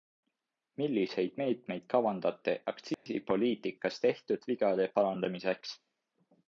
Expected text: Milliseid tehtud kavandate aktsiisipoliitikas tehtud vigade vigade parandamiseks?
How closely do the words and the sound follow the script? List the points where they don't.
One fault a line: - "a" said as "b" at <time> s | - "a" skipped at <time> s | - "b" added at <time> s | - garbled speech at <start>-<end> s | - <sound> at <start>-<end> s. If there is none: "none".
- "tehtud" said as "meetmeid" at 1.4 s
- dropout at 2.9-3.1 s
- "vigade" skipped at 4.9 s